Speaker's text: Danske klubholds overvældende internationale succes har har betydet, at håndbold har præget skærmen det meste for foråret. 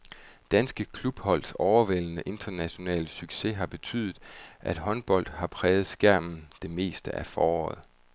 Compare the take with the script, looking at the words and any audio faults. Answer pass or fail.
fail